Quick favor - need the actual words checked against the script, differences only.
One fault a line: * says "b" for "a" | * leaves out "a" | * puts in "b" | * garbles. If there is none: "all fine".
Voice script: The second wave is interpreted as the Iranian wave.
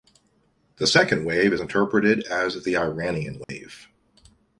all fine